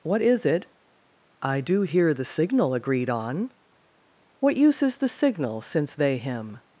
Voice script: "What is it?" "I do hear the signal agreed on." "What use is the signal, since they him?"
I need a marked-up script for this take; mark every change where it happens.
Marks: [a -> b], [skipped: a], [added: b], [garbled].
"What is it?" "I do hear the signal agreed on." "What use is the signal, since they him?"